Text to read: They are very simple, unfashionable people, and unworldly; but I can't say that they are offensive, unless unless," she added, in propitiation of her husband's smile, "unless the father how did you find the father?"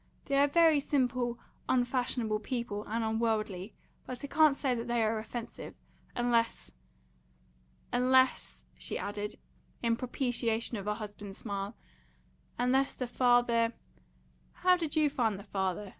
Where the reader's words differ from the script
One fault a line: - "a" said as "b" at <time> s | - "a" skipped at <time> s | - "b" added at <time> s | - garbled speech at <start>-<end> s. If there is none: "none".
none